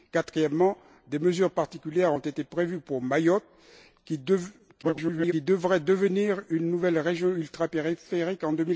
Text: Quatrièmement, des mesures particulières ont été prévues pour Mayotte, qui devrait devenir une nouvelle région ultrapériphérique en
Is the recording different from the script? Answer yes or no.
yes